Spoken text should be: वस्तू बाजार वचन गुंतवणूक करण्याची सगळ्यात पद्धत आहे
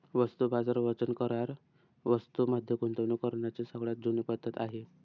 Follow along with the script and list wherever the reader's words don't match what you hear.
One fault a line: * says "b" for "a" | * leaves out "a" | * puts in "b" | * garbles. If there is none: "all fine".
* puts in "करार वस्तूं मध्ये"
* puts in "जुनी"